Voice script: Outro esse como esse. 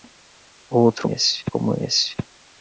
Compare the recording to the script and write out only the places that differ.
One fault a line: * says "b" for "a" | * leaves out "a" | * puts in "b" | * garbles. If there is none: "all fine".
all fine